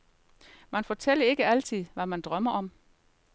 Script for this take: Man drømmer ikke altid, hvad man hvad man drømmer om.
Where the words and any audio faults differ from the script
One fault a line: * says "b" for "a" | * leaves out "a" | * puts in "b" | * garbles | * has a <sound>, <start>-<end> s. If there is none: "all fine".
* says "fortæller" for "drømmer"
* leaves out "hvad man"